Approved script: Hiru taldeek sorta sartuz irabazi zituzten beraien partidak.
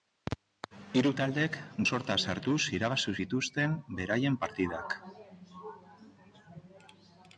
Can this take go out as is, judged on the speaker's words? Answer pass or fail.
pass